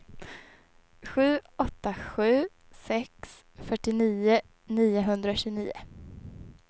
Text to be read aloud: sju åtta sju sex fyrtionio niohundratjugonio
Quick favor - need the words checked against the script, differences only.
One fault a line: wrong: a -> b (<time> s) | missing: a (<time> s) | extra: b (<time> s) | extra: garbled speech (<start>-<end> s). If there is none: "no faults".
no faults